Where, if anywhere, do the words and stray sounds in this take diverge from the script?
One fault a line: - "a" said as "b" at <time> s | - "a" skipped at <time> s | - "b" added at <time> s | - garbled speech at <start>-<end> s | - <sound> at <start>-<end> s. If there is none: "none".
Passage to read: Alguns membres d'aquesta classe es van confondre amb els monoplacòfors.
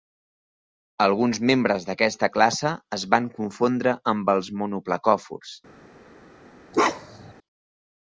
- bark at 6.7-7.3 s